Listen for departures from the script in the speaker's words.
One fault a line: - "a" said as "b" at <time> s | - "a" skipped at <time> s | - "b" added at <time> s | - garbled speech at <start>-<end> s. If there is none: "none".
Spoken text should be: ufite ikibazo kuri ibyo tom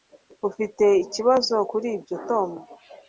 none